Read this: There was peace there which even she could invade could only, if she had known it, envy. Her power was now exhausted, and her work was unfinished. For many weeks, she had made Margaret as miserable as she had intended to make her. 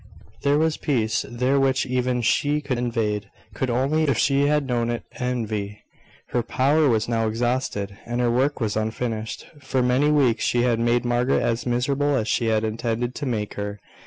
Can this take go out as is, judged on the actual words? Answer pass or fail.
pass